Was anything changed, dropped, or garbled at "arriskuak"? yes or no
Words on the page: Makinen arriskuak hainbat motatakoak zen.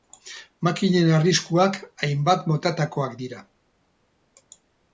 no